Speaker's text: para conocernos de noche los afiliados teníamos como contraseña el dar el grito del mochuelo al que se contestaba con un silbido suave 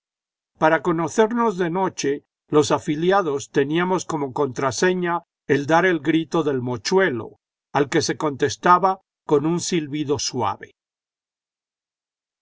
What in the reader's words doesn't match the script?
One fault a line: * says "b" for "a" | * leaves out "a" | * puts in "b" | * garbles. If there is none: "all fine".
all fine